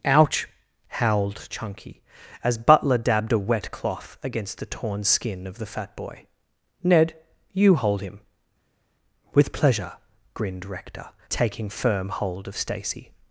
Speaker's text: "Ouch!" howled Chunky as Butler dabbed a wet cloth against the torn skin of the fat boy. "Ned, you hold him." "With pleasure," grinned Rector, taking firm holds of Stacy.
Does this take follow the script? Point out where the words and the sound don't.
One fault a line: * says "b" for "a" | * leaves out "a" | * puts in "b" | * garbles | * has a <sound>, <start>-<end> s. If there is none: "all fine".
* says "hold" for "holds"